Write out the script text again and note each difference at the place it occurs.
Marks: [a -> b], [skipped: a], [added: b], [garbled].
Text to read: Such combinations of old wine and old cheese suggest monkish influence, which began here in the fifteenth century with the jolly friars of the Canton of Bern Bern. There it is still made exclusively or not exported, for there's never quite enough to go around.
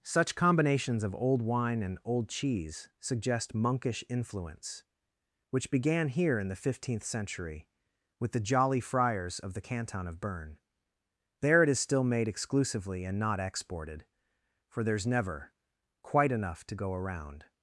Such combinations of old wine and old cheese suggest monkish influence, which began here in the fifteenth century with the jolly friars of the Canton of Bern [skipped: Bern.] There it is still made exclusively [or -> and] not exported, for there's never quite enough to go around.